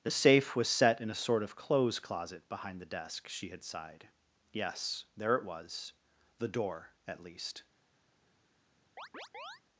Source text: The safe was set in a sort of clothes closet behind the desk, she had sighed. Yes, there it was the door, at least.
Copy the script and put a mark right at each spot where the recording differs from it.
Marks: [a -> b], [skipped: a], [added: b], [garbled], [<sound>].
The safe was set in a sort of clothes closet behind the desk, she had sighed. Yes, there it was the door, at least. [chirp]